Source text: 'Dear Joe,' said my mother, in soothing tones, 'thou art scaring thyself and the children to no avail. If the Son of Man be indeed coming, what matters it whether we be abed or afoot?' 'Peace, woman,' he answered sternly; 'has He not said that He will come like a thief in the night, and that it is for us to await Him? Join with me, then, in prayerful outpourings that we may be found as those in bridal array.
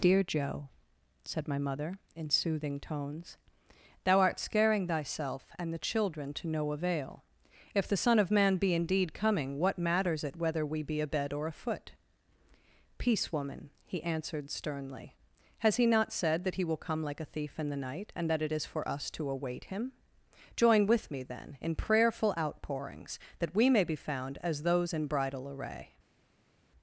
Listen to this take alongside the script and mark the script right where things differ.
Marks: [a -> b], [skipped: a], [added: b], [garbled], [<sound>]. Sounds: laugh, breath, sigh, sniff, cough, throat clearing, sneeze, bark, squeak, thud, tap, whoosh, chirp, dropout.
'Dear Joe,' said my mother, in soothing tones, 'thou art scaring thyself and the children to no avail. If the Son of Man be indeed coming, what matters it whether we be abed or afoot?' 'Peace, woman,' he answered sternly; 'has He not said that He will come like a thief in the night, and that it is for us to await Him? Join with me, then, in prayerful outpourings that we may be found as those in bridal array.